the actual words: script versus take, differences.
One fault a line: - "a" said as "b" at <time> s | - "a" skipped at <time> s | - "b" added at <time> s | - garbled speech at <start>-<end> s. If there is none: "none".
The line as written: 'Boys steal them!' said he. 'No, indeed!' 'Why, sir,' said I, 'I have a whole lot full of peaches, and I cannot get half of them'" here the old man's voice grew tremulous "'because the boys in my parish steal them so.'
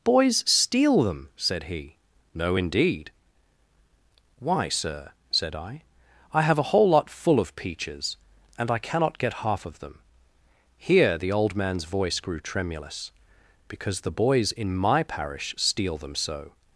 none